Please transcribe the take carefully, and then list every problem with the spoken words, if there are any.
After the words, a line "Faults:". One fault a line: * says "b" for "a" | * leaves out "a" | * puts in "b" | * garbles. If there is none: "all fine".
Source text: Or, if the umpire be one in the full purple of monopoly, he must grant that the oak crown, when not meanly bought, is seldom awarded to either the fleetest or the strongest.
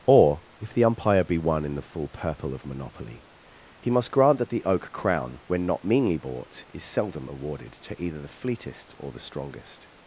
Or, if the umpire be one in the full purple of monopoly, he must grant that the oak crown, when not meanly bought, is seldom awarded to either the fleetest or the strongest.
Faults:
all fine